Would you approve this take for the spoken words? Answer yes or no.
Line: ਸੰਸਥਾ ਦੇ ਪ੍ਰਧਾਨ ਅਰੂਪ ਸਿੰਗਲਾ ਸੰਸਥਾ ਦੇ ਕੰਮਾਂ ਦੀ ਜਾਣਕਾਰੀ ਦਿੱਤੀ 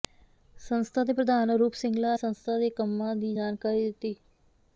yes